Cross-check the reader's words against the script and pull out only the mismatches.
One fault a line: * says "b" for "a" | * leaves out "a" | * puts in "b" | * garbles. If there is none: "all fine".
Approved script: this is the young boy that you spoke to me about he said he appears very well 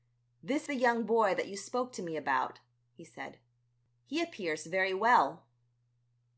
* leaves out "is"